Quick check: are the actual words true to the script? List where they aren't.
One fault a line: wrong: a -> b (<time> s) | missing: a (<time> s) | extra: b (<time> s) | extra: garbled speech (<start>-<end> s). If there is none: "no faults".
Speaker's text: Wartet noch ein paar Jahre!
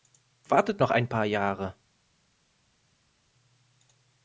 no faults